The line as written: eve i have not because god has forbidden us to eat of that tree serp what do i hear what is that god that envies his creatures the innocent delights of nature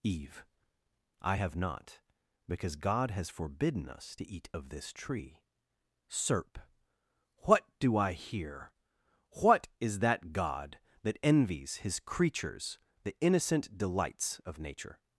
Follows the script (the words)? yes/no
no